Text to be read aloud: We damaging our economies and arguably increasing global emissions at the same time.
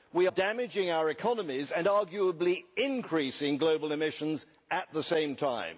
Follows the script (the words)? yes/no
yes